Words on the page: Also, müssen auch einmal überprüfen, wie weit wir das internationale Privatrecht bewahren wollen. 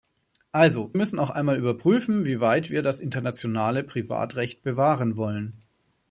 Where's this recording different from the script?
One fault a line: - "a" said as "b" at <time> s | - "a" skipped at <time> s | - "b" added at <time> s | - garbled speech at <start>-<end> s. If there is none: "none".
none